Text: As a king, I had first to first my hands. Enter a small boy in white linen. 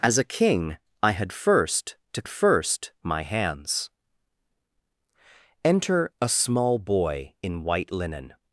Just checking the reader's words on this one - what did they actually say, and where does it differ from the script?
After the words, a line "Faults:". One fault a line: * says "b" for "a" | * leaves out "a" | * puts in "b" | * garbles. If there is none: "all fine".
As a king, I had first to first my hands. Enter a small boy in white linen.
Faults:
all fine